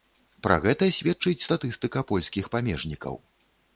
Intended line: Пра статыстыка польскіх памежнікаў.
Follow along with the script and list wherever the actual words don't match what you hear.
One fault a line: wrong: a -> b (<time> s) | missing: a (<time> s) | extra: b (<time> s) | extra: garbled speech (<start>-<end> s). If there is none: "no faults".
extra: гэта сведчыць (0.6 s)